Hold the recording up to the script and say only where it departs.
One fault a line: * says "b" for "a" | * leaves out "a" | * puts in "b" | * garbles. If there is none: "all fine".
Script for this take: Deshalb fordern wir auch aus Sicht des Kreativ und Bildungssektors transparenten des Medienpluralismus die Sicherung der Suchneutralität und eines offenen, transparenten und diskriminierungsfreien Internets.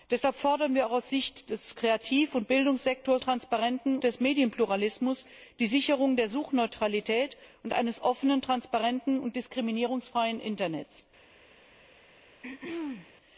all fine